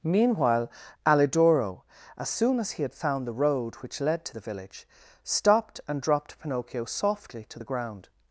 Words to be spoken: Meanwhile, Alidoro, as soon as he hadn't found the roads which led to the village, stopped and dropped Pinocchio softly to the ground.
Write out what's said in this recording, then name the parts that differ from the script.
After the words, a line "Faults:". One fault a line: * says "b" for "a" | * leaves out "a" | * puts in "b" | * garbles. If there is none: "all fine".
Meanwhile, Alidoro, as soon as he had found the road which led to the village, stopped and dropped Pinocchio softly to the ground.
Faults:
* says "had" for "hadn't"
* says "road" for "roads"